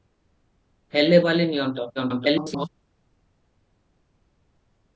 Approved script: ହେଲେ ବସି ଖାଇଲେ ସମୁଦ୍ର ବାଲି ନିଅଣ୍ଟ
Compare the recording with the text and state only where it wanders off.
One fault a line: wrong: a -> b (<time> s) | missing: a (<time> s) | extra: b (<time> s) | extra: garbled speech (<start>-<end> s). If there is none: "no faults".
missing: ବସି ଖାଇଲେ ସମୁଦ୍ର (1.2 s)
extra: garbled speech (2.0-2.7 s)